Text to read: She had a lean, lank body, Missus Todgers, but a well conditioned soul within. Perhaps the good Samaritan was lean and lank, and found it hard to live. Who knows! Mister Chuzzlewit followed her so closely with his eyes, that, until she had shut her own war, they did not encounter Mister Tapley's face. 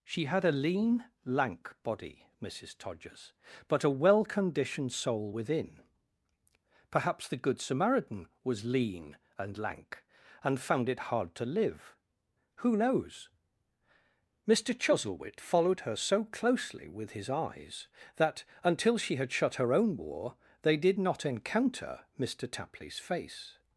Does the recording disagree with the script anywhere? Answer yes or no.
no